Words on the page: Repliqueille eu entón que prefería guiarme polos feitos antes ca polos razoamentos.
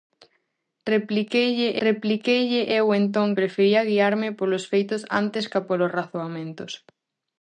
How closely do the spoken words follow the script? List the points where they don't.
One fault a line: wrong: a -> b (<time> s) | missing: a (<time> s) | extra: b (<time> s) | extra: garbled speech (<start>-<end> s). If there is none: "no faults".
extra: repliqueille (1.9 s)
missing: que (3.3 s)